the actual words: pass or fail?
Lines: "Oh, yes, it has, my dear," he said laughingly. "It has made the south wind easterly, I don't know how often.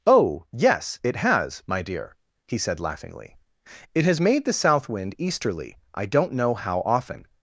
pass